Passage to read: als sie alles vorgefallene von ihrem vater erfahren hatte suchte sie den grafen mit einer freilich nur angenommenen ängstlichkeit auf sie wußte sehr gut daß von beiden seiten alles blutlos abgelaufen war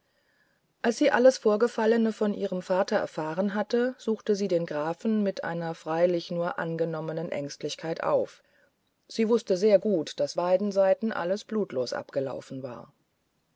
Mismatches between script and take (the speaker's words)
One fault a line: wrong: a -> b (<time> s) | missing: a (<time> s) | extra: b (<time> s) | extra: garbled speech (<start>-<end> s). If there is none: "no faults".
missing: von (10.3 s)